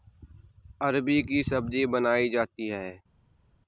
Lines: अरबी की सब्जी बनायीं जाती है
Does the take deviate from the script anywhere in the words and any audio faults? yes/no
no